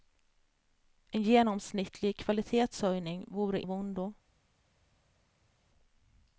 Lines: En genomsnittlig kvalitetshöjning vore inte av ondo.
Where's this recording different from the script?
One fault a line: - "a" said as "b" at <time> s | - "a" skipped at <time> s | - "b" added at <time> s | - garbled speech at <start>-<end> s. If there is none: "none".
- "inte" skipped at 3.6 s